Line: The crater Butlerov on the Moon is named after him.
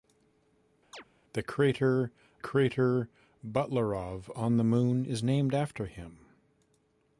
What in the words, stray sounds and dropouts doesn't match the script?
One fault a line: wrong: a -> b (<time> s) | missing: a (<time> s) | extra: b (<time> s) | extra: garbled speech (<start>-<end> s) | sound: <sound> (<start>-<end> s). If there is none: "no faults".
sound: chirp (0.9-1.0 s)
extra: crater (2.4 s)